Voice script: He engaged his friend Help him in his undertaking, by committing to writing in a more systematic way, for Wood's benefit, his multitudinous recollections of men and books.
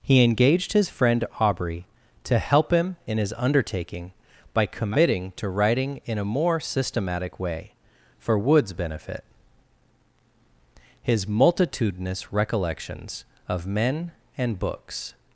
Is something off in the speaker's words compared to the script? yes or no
yes